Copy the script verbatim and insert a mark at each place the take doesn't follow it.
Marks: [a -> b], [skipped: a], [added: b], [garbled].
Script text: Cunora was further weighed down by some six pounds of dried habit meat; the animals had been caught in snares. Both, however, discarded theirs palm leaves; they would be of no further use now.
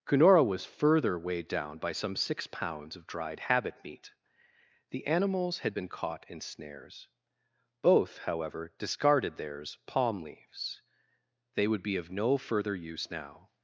Cunora was further weighed down by some six pounds of dried habit meat; the animals had been caught in snares. Both, however, discarded theirs palm leaves; they would be of no further use now.